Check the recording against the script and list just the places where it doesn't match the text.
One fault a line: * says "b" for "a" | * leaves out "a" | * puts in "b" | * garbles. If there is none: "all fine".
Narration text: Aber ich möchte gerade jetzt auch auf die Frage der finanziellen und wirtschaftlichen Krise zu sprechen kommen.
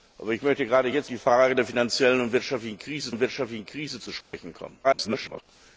* leaves out "auch auf"
* puts in "und wirtschaftlichen Krise"
* garbles